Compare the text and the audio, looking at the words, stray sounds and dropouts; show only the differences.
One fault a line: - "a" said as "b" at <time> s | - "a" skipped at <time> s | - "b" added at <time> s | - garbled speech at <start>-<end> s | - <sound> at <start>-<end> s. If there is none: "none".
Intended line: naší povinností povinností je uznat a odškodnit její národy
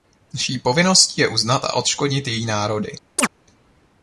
- "povinností" skipped at 1.2 s
- chirp at 3.2-3.3 s